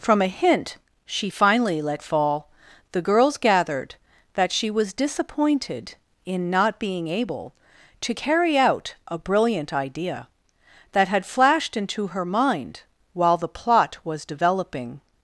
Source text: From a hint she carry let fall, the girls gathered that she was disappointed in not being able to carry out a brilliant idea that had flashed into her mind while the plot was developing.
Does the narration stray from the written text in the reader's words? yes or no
yes